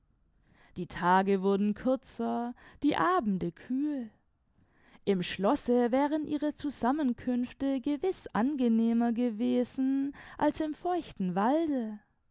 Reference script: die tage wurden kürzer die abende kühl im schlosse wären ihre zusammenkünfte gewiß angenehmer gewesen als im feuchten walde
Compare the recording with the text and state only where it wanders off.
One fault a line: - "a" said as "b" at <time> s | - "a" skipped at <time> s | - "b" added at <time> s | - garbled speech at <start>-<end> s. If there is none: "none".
none